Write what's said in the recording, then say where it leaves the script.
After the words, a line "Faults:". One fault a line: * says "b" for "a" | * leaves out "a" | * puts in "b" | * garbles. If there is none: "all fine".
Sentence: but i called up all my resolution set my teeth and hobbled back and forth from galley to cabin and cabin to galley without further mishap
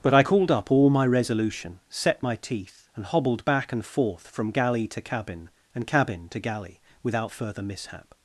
but i called up all my resolution set my teeth and hobbled back and forth from galley to cabin and cabin to galley without further mishap
Faults:
all fine